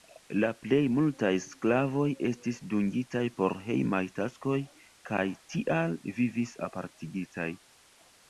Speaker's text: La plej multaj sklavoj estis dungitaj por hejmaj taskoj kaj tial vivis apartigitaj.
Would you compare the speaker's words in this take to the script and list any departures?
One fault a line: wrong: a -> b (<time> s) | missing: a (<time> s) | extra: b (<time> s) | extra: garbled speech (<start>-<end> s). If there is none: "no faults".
no faults